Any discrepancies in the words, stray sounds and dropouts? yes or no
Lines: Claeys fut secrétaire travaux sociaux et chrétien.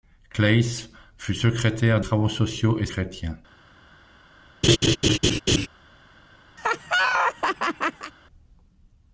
yes